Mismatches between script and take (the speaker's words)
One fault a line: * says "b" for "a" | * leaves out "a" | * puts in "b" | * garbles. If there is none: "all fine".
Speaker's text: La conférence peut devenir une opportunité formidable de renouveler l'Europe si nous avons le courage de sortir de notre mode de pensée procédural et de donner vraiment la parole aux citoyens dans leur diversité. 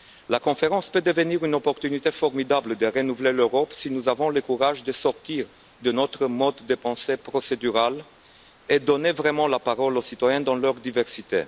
all fine